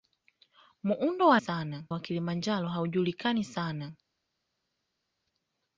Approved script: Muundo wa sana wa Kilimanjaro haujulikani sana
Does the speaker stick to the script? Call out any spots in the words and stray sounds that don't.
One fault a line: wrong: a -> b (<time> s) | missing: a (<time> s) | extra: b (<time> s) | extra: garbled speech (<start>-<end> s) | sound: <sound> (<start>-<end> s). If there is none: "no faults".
no faults